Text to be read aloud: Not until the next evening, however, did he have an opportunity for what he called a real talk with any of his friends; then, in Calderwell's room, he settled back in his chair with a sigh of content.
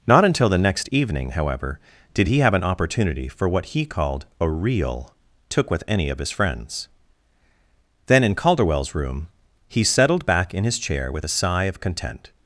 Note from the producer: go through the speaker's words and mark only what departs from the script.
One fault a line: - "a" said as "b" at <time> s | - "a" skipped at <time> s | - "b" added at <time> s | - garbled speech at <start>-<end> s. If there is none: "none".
- "talk" said as "took" at 5.5 s